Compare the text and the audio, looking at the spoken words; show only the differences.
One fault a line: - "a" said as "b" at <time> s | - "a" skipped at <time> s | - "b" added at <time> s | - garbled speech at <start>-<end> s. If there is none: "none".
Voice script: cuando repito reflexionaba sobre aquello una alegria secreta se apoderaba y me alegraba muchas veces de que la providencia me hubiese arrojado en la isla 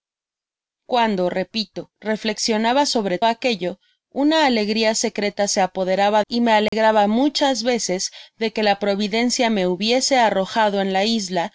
none